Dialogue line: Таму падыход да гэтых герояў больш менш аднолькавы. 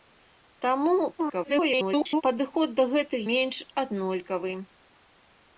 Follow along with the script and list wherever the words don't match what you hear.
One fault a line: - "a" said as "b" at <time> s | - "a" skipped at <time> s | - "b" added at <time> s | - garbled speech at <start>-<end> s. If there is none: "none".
- garbled speech at 1.2-2.2 s
- "герояў больш" skipped at 3.2 s